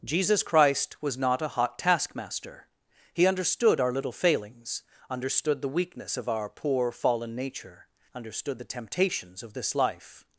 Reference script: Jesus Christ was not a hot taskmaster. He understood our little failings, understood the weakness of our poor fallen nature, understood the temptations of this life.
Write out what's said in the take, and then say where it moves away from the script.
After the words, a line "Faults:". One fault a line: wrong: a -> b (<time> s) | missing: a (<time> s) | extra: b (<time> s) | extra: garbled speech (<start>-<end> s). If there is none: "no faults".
Jesus Christ was not a hot taskmaster. He understood our little failings, understood the weakness of our poor fallen nature, understood the temptations of this life.
Faults:
no faults